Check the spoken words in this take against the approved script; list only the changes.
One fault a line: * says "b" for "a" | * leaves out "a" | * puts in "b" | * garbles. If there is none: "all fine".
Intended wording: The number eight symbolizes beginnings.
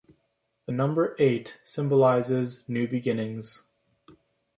* puts in "new"